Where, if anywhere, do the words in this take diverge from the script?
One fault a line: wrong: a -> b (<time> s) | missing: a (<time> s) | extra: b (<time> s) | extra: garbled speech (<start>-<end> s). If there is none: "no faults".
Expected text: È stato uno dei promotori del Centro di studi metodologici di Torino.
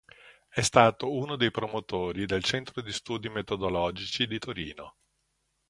no faults